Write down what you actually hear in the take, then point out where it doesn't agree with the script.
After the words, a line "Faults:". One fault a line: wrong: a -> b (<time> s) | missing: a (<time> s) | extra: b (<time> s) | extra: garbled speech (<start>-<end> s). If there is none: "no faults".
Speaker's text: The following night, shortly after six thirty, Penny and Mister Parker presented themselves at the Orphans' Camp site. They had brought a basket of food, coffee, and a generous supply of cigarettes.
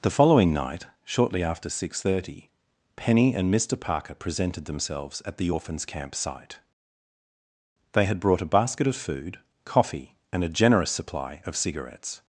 The following night, shortly after six thirty, Penny and Mister Parker presented themselves at the Orphans' Camp site. They had brought a basket of food, coffee, and a generous supply of cigarettes.
Faults:
no faults